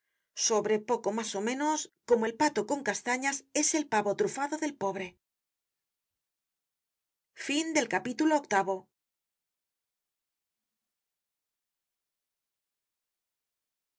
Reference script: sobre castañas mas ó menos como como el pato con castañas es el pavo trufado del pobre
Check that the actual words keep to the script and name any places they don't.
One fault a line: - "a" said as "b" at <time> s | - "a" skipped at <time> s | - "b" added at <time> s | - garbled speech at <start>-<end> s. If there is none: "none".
- "castañas" said as "poco" at 0.9 s
- "como" skipped at 2.2 s